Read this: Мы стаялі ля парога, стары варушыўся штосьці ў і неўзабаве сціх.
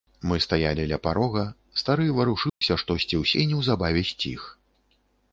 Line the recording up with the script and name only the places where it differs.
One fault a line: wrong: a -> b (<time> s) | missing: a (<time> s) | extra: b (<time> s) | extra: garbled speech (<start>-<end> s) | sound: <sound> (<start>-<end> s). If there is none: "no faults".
sound: dropout (2.5-2.6 s)